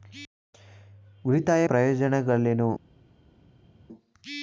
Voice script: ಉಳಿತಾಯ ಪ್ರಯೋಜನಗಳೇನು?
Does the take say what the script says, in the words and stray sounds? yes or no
yes